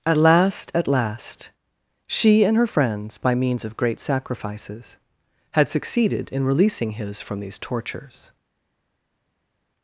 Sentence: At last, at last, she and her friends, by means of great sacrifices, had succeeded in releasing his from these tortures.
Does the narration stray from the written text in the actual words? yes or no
no